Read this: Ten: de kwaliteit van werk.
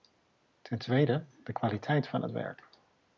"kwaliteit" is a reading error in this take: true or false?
false